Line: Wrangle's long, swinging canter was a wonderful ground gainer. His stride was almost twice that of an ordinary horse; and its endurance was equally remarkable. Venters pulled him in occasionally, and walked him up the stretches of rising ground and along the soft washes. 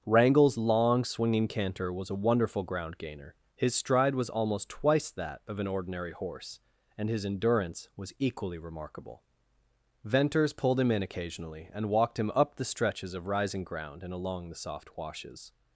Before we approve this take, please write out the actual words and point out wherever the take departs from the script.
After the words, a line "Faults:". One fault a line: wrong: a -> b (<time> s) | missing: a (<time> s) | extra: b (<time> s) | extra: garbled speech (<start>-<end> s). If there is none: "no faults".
Wrangle's long, swinging canter was a wonderful ground gainer. His stride was almost twice that of an ordinary horse; and his endurance was equally remarkable. Venters pulled him in occasionally, and walked him up the stretches of rising ground and along the soft washes.
Faults:
wrong: its -> his (7.1 s)